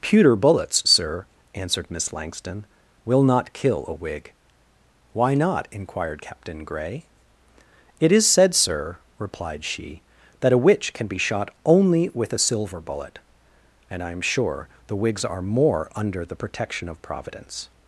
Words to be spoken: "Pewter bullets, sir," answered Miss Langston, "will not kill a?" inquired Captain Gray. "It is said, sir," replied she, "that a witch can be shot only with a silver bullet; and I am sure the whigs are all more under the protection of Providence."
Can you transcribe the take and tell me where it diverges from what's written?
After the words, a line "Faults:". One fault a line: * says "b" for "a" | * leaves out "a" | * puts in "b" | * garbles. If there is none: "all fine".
"Pewter bullets, sir," answered Miss Langston, "will not kill a whig." "Why not?" inquired Captain Gray. "It is said, sir," replied she, "that a witch can be shot only with a silver bullet; and I am sure the whigs are more under the protection of Providence."
Faults:
* puts in "whig Why not"
* leaves out "all"